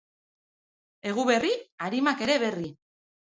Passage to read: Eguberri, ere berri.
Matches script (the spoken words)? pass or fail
fail